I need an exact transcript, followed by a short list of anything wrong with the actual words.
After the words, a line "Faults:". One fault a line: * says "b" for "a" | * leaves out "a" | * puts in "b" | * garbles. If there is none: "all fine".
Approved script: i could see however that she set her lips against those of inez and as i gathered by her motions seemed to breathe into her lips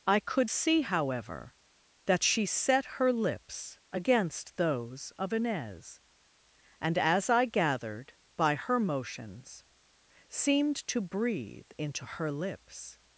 i could see however that she set her lips against those of inez and as i gathered by her motions seemed to breathe into her lips
Faults:
all fine